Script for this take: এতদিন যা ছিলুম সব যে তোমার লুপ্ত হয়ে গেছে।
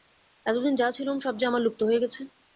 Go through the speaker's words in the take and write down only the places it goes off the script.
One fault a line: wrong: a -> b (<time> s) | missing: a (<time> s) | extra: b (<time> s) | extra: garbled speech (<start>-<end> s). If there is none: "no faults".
wrong: তোমার -> আমার (1.5 s)